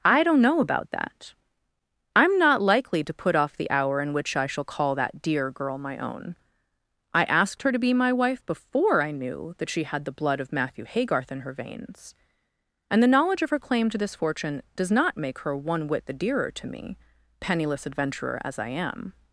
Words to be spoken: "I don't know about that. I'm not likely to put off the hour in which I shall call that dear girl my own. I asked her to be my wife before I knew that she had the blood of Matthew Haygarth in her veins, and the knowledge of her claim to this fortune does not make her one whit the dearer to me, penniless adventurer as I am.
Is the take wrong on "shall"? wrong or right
right